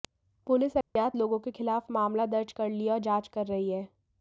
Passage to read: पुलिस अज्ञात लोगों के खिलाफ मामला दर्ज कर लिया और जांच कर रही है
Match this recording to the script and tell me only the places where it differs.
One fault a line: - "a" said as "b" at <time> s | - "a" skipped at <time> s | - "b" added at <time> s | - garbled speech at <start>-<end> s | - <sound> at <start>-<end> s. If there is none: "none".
- dropout at 0.8-1.0 s